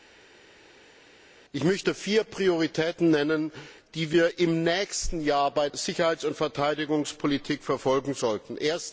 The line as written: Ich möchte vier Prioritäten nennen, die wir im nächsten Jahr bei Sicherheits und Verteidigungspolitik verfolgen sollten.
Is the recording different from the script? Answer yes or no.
no